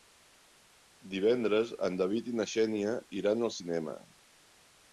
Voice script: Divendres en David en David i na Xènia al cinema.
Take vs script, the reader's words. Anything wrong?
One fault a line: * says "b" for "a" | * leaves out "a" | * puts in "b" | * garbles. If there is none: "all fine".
* leaves out "en David"
* puts in "iran"